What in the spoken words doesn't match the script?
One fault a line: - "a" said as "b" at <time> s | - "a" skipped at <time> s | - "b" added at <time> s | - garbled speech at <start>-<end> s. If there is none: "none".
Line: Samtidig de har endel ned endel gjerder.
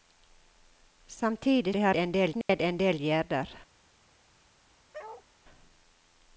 none